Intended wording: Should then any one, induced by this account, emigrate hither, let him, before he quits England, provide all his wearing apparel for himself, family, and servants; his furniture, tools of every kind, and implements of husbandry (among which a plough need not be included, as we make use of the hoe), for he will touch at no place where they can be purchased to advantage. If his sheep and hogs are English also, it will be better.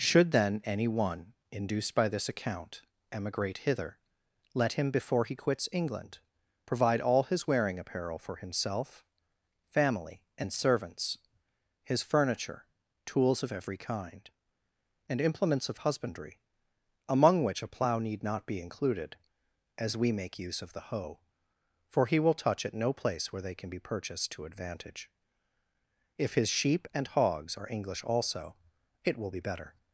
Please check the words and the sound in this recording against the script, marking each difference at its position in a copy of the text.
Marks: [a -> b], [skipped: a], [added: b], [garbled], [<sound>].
Should then any one, induced by this account, emigrate hither, let him, before he quits England, provide all his wearing apparel for himself, family, and servants; his furniture, tools of every kind, and implements of husbandry (among which a plough need not be included, as we make use of the hoe), for he will touch at no place where they can be purchased to advantage. If his sheep and hogs are English also, it will be better.